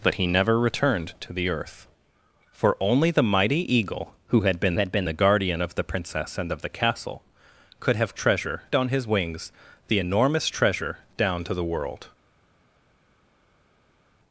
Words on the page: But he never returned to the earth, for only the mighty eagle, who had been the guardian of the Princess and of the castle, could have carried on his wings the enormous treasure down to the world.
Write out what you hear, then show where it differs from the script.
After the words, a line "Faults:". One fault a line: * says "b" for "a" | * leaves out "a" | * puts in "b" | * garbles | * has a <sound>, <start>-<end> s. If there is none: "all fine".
But he never returned to the earth, for only the mighty eagle, who had been had been the guardian of the Princess and of the castle, could have treasure on his wings the enormous treasure down to the world.
Faults:
* puts in "had been"
* says "treasure" for "carried"